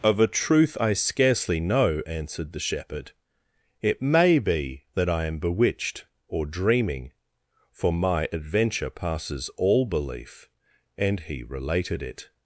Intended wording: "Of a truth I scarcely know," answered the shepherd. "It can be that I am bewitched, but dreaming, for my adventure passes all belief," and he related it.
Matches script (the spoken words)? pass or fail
fail